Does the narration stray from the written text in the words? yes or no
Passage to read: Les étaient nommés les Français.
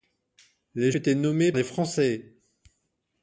no